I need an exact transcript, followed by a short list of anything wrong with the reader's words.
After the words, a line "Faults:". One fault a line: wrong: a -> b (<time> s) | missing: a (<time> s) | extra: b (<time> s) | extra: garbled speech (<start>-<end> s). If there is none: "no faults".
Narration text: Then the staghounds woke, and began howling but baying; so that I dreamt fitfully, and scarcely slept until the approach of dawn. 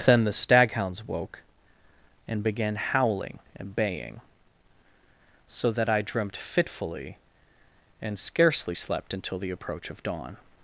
Then the staghounds woke, and began howling and baying; so that I dreamt fitfully, and scarcely slept until the approach of dawn.
Faults:
wrong: but -> and (3.6 s)